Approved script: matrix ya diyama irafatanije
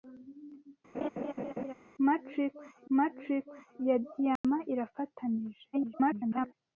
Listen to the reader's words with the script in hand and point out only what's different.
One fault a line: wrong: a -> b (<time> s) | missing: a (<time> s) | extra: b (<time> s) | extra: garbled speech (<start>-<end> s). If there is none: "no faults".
extra: matrix (3.0 s)
extra: garbled speech (5.7-6.5 s)